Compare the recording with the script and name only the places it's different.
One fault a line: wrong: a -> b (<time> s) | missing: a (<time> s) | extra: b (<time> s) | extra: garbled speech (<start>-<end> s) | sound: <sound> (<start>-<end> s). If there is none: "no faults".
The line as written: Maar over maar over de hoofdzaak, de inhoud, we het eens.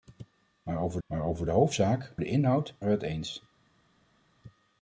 no faults